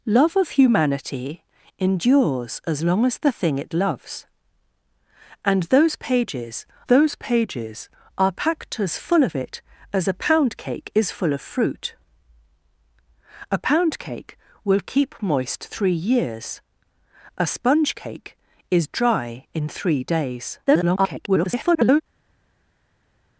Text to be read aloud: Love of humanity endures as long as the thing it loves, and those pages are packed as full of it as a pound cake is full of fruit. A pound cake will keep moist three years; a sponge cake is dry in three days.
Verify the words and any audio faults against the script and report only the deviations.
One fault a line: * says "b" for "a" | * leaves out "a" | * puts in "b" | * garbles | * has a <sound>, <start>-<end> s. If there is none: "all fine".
* puts in "those pages"
* garbles